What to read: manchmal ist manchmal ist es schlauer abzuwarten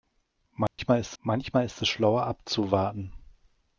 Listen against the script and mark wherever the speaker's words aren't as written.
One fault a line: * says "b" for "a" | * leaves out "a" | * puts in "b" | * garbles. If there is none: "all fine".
all fine